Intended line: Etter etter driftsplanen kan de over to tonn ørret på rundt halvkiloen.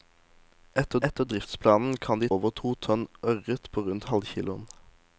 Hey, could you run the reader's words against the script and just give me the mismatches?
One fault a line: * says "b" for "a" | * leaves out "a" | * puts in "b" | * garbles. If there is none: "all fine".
all fine